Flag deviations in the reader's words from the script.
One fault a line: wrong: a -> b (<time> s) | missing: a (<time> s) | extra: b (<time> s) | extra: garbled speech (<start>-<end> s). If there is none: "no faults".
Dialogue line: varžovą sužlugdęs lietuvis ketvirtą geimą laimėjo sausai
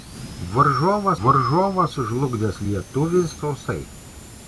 extra: varžovą (1.2 s)
missing: ketvirtą geimą laimėjo (3.3 s)